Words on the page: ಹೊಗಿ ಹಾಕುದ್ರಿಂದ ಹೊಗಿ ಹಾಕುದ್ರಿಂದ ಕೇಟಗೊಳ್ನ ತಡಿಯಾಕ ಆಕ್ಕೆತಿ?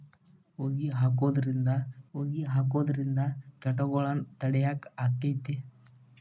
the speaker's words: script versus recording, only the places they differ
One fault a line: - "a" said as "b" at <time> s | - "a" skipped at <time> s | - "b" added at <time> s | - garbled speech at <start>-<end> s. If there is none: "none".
none